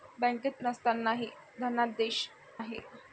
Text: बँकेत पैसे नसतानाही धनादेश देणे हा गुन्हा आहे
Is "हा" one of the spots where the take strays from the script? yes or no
yes